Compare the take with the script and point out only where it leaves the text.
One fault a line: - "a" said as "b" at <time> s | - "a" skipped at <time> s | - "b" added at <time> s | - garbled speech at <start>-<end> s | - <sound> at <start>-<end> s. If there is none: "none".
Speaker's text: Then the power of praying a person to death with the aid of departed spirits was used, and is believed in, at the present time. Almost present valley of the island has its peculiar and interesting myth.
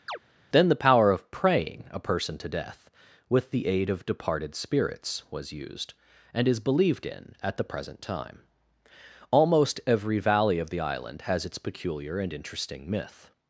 - chirp at 0.1-0.2 s
- "present" said as "every" at 9.9 s